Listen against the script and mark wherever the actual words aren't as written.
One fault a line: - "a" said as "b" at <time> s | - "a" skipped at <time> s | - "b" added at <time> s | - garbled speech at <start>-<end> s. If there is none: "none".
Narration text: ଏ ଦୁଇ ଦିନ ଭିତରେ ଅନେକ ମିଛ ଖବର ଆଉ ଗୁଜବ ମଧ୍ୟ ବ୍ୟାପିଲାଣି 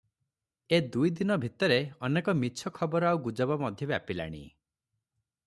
none